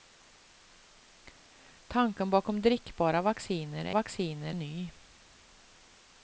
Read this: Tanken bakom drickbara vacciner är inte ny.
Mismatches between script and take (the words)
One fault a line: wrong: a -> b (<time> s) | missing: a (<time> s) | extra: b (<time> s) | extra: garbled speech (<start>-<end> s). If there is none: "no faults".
wrong: inte -> vacciner (3.9 s)